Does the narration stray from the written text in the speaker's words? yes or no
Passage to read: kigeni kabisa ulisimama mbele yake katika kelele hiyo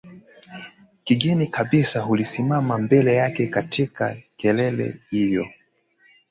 no